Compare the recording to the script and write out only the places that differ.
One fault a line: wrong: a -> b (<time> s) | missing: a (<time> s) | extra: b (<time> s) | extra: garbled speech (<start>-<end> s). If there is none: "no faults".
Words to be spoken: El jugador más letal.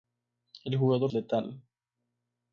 missing: más (1.1 s)